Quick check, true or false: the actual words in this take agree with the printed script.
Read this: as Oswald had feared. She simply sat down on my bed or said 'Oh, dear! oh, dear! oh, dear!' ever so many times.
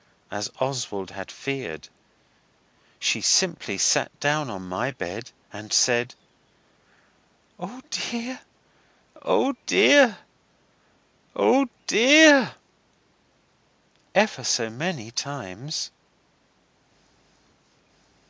false